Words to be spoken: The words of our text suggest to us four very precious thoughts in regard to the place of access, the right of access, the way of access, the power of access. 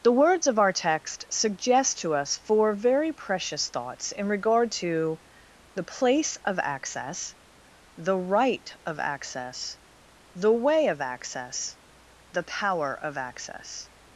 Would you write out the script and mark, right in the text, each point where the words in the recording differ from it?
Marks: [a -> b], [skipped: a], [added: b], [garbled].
The words of our text suggest to us four very precious thoughts in regard to the place of access, the right of access, the way of access, the power of access.